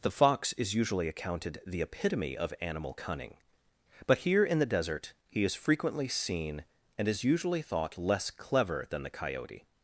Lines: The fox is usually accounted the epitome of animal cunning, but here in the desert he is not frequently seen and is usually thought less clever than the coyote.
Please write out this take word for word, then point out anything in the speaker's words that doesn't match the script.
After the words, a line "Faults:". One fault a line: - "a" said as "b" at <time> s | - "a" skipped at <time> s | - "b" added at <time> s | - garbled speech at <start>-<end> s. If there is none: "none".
The fox is usually accounted the epitome of animal cunning, but here in the desert he is frequently seen and is usually thought less clever than the coyote.
Faults:
- "not" skipped at 5.5 s